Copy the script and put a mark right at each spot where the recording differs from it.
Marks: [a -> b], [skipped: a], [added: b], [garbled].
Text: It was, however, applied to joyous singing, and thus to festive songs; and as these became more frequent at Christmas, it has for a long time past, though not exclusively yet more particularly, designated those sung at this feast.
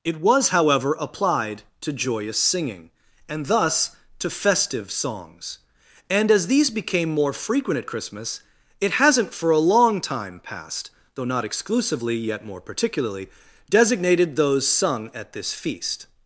It was, however, applied to joyous singing, and thus to festive songs; and as these became more frequent at Christmas, it [has -> hasn't] for a long time past, though not exclusively yet more particularly, designated those sung at this feast.